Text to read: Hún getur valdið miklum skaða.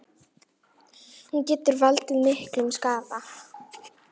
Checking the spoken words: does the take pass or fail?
pass